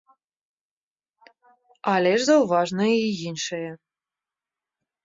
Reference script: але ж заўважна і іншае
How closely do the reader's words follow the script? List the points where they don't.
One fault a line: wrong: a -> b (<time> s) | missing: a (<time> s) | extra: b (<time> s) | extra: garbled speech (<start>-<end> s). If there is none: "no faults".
no faults